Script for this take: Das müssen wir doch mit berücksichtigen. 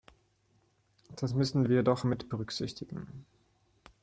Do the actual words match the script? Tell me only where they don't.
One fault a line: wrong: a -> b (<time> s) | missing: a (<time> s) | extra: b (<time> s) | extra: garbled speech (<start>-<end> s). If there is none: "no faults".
no faults